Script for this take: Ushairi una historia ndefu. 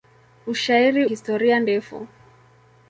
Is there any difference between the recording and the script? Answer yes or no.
yes